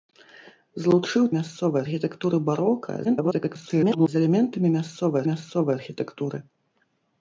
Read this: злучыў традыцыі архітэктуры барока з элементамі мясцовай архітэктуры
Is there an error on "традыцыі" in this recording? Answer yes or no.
yes